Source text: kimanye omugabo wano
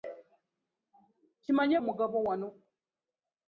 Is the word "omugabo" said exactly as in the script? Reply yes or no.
yes